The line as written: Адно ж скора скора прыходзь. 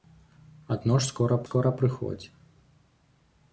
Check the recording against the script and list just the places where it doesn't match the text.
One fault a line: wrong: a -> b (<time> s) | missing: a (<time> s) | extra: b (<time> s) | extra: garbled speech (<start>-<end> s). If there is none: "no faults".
no faults